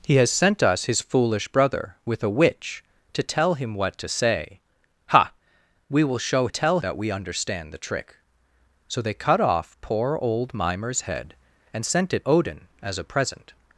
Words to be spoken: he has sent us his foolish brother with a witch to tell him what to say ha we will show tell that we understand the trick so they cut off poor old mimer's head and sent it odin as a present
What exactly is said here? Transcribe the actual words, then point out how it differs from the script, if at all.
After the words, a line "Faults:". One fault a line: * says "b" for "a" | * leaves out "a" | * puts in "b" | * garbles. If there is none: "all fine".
he has sent us his foolish brother with a witch to tell him what to say ha we will show tell that we understand the trick so they cut off poor old mimer's head and sent it odin as a present
Faults:
all fine